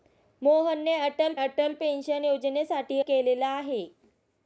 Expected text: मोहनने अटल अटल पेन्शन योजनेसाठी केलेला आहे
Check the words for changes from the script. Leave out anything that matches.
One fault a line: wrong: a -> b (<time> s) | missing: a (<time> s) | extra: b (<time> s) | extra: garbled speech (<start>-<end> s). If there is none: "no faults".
no faults